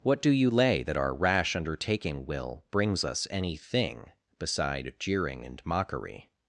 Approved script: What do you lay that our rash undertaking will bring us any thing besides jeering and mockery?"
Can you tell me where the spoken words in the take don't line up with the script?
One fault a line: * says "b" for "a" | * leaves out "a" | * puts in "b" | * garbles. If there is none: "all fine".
* says "brings" for "bring"
* says "beside" for "besides"